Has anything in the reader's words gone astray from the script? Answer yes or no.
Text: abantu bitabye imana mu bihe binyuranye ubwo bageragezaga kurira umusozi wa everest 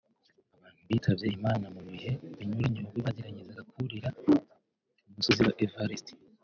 no